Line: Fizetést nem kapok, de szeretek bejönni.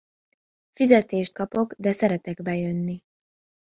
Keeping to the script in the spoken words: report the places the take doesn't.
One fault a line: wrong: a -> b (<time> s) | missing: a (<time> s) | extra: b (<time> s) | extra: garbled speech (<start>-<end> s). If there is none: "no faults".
missing: nem (1.3 s)